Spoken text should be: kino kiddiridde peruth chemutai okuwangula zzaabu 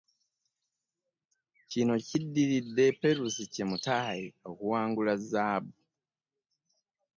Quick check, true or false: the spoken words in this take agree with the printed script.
true